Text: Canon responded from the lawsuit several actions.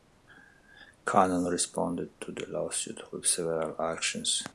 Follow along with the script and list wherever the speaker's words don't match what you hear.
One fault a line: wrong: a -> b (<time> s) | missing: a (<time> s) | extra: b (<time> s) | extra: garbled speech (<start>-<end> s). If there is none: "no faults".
wrong: from -> to (2.2 s)
extra: with (3.1 s)